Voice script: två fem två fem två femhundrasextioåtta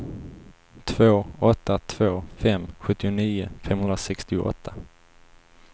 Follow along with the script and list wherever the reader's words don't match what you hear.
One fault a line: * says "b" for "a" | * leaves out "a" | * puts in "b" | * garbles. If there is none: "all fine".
* says "åtta" for "fem"
* says "sjuttionio" for "två"